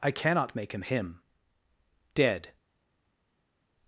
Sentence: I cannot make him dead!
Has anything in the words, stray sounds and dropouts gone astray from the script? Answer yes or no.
yes